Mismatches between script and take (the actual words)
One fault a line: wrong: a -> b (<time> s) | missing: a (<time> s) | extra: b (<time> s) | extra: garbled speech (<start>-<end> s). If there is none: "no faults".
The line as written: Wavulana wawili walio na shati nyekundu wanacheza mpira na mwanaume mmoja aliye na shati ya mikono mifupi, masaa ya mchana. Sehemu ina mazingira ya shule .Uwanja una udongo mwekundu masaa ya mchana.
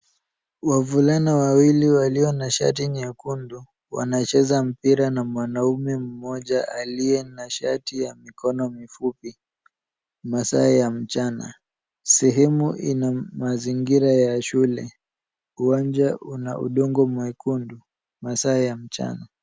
no faults